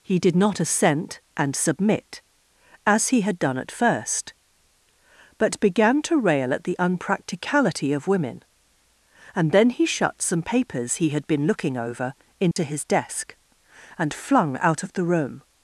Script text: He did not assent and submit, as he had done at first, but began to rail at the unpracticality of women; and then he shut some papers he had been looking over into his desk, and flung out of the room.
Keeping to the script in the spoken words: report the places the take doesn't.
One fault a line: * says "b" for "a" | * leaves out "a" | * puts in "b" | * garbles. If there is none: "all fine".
all fine